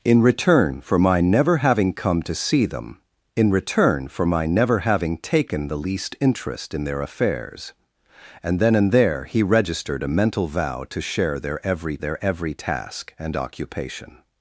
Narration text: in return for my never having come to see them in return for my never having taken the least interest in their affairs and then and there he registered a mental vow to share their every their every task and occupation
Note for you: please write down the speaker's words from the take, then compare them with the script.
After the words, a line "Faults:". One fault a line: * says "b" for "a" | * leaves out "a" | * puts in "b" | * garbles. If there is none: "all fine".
in return for my never having come to see them in return for my never having taken the least interest in their affairs and then and there he registered a mental vow to share their every their every task and occupation
Faults:
all fine